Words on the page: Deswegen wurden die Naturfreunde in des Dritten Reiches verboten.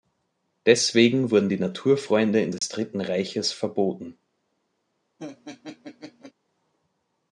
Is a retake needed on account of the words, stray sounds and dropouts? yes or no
yes